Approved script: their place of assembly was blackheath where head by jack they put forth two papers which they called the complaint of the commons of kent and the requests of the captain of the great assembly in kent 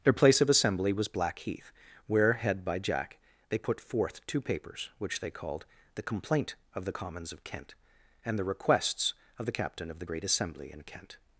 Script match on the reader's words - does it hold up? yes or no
yes